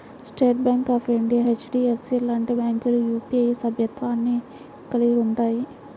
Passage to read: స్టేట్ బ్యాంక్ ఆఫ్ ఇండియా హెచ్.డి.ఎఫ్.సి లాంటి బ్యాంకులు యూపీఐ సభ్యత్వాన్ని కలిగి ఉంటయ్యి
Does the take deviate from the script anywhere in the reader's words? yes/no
no